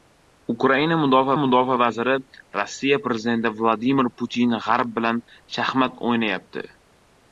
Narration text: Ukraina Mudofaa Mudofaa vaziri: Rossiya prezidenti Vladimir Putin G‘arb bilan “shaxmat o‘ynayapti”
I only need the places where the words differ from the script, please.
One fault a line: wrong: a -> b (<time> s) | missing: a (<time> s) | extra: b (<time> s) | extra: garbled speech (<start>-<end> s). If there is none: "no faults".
no faults